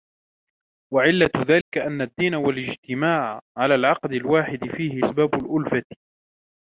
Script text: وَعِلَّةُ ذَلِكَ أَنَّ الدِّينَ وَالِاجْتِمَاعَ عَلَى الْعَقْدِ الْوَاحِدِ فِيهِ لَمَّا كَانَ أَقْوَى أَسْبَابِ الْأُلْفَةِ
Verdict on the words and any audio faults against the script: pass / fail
fail